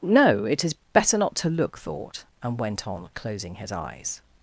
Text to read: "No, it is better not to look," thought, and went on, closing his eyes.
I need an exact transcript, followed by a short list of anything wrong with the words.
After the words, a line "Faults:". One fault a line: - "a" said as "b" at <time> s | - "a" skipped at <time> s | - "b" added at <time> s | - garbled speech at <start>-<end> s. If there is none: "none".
"No, it is better not to look," thought, and went on, closing his eyes.
Faults:
none